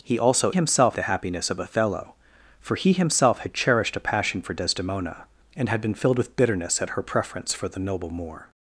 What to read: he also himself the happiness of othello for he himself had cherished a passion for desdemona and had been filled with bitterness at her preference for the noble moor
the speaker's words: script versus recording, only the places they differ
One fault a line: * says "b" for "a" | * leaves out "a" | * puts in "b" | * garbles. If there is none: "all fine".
all fine